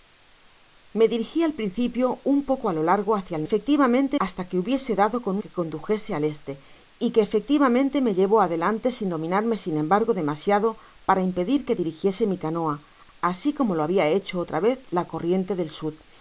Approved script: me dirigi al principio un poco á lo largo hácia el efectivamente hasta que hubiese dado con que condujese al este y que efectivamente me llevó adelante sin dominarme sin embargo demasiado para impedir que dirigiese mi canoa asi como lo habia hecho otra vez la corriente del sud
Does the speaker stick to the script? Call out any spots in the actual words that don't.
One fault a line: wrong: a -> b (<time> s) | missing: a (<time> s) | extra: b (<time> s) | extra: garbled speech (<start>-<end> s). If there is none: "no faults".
no faults